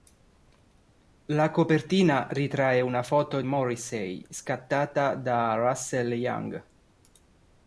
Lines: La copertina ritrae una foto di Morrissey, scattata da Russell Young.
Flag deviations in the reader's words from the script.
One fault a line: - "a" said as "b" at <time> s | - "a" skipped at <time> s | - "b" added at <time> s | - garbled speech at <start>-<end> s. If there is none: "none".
- "di" skipped at 3.4 s